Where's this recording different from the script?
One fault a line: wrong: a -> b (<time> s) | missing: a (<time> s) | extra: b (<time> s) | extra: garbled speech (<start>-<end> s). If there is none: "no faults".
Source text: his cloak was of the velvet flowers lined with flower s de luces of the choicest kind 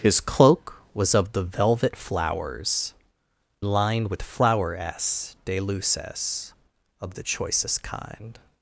no faults